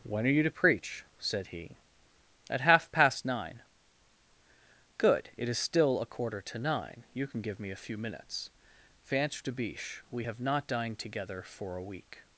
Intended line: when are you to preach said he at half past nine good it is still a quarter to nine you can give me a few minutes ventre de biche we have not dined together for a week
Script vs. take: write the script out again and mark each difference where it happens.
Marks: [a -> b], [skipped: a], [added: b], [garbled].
when are you to preach said he at half past nine good it is still a quarter to nine you can give me a few minutes ventre de biche we have not dined together for a week